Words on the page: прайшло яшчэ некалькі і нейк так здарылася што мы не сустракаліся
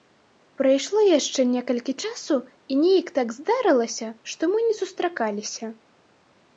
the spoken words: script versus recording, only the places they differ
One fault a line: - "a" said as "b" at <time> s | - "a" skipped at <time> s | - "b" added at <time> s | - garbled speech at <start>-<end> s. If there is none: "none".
- "часу" added at 2.0 s